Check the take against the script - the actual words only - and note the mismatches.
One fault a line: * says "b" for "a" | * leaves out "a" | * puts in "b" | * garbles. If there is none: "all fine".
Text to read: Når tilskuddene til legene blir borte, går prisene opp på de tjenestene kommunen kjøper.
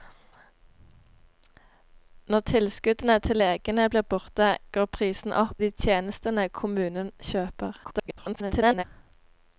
* leaves out "på"
* garbles